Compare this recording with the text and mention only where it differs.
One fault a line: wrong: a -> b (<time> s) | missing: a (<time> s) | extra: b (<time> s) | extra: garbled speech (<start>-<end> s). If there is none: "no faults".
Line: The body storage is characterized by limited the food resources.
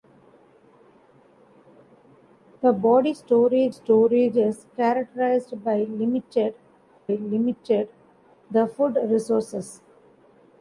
extra: storage (3.7 s)
extra: limited (7.1 s)